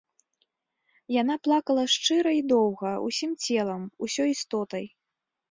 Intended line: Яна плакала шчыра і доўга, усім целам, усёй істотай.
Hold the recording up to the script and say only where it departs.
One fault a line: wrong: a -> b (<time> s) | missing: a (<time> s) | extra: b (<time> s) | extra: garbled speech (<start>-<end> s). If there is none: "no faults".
no faults